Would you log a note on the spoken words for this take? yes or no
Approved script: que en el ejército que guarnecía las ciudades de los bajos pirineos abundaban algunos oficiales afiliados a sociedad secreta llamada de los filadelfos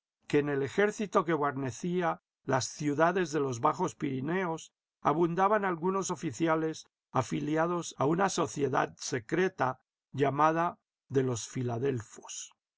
yes